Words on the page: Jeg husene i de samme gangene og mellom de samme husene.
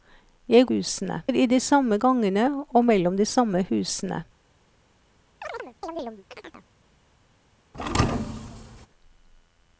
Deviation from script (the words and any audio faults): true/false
true